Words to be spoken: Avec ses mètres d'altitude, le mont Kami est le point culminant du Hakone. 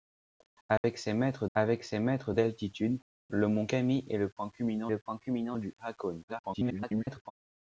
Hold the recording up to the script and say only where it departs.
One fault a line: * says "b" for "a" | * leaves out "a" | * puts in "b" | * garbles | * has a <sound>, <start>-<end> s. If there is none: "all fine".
* has a dropout, 0.8-0.8 s
* puts in "avec ses mètres"
* puts in "le point culminant"
* garbles